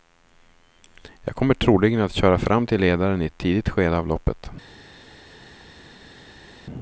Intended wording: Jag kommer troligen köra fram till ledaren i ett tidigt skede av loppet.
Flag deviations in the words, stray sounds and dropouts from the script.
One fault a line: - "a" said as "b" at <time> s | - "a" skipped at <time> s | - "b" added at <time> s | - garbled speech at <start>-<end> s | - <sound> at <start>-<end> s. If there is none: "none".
- "att" added at 2.0 s